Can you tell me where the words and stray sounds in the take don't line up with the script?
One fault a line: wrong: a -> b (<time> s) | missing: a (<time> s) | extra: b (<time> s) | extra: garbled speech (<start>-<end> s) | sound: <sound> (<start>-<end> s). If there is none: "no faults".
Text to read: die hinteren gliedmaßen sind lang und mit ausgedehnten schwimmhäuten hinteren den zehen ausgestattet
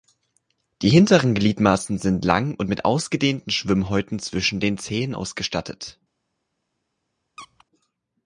wrong: hinteren -> zwischen (4.2 s)
sound: squeak (7.4-7.6 s)